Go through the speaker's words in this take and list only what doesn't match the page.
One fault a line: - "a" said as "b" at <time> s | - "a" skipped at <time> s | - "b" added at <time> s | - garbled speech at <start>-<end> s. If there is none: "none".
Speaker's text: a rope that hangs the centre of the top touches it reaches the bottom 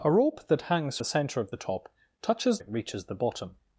none